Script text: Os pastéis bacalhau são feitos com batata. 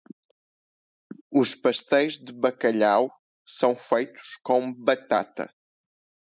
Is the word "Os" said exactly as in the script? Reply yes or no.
yes